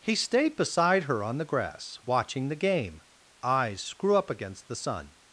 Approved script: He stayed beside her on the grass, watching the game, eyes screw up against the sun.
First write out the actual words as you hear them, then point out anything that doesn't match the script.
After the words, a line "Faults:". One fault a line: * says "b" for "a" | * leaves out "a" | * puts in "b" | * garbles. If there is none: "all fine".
He stayed beside her on the grass, watching the game, eyes screw up against the sun.
Faults:
all fine